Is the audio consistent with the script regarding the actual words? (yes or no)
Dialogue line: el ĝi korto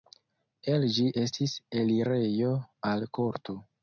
no